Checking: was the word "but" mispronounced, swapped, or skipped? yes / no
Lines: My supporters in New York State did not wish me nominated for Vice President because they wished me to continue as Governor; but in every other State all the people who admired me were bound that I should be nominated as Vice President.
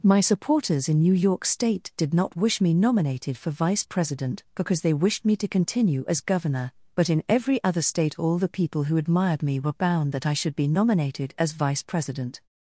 no